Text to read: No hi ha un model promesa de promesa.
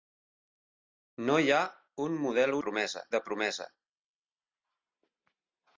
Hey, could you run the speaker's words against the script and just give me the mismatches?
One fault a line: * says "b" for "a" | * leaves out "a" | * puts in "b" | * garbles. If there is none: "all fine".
all fine